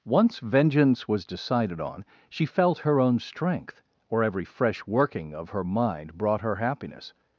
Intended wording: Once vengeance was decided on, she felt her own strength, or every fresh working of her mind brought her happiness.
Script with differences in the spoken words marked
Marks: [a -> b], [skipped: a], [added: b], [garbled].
Once vengeance was decided on, she felt her own strength, or every fresh working of her mind brought her happiness.